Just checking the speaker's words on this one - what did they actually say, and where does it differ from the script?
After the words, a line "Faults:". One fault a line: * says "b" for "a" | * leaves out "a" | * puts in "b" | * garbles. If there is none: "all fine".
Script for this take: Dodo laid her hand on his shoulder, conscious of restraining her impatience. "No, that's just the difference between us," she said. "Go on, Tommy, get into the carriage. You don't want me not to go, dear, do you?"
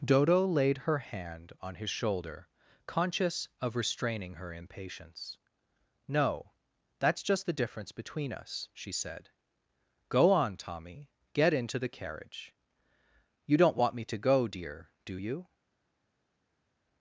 Dodo laid her hand on his shoulder, conscious of restraining her impatience. "No, that's just the difference between us," she said. "Go on, Tommy, get into the carriage. You don't want me to go, dear, do you?"
Faults:
* leaves out "not"